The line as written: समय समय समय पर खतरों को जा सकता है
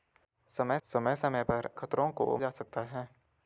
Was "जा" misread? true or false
false